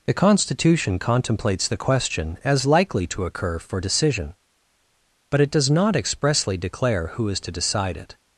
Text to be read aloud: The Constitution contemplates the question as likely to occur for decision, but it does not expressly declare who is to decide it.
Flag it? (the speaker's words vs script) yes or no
no